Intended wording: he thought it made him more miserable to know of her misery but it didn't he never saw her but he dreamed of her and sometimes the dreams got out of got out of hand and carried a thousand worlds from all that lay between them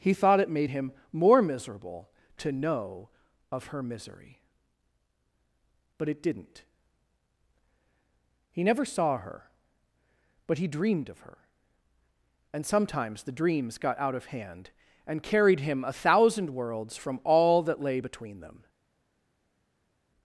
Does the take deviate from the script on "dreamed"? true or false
false